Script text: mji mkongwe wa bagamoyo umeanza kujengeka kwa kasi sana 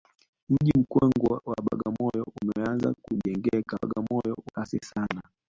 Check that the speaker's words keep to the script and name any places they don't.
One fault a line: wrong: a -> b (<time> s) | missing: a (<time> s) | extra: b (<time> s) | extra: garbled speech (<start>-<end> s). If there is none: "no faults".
wrong: kwa -> bagamoyo (3.8 s)